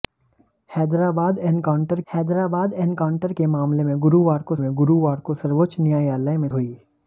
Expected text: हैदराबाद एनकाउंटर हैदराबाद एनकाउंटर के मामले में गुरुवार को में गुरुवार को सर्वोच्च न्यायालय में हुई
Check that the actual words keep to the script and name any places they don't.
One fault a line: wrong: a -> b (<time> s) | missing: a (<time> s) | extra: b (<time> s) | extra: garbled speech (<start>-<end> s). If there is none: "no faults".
no faults